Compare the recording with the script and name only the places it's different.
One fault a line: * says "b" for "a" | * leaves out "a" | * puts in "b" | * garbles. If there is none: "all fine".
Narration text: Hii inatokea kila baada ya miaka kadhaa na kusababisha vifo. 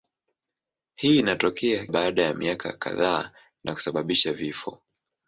* leaves out "kila"